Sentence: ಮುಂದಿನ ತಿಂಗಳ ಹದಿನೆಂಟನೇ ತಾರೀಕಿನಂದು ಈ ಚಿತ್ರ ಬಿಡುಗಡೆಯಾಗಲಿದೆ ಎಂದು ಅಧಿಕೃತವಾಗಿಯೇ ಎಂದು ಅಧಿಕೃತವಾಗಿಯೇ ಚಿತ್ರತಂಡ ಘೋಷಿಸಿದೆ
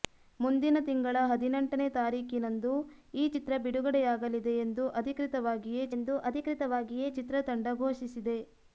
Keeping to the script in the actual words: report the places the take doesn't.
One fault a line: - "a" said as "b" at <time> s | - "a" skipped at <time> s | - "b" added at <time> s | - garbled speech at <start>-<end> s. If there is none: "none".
none